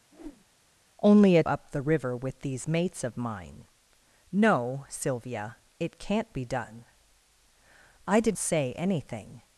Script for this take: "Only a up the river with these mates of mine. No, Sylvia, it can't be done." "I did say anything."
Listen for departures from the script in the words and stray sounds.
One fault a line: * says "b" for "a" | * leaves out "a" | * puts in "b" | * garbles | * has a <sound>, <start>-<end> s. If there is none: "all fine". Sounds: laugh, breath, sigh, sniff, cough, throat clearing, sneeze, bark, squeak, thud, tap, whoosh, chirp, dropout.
* has a whoosh, 0.1-0.5 s